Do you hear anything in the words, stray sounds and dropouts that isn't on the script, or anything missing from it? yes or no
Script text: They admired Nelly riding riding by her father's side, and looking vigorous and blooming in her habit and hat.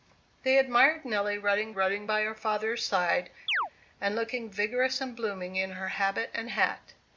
yes